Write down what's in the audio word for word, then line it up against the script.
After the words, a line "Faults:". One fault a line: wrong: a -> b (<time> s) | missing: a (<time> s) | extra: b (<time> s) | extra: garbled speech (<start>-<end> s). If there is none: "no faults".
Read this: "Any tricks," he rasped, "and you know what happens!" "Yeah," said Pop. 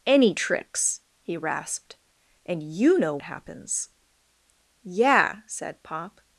"Any tricks," he rasped, "and you know happens!" "Yeah," said Pop.
Faults:
missing: what (3.2 s)